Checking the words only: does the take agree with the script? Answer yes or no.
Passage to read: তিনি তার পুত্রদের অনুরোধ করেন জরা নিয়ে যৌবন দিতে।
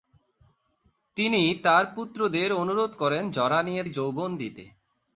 yes